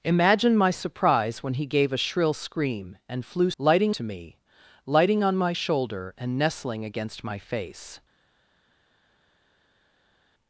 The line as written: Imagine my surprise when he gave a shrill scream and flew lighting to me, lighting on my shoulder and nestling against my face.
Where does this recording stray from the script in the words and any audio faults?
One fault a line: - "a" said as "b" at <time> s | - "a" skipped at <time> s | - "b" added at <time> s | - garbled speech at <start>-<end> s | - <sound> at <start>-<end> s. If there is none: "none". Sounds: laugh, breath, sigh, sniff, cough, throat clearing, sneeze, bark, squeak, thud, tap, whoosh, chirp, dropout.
none